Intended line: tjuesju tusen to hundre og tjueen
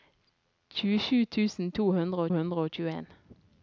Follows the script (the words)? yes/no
no